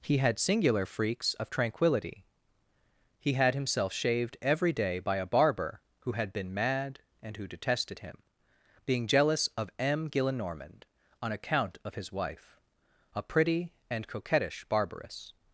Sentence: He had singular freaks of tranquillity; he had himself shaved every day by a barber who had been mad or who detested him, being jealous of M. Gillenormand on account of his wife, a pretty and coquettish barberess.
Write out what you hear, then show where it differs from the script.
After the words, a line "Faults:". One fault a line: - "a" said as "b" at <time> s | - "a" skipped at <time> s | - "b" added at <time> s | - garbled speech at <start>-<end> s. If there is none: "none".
He had singular freaks of tranquillity; he had himself shaved every day by a barber who had been mad and who detested him, being jealous of M. Gillenormand on account of his wife, a pretty and coquettish barberess.
Faults:
- "or" said as "and" at 7.2 s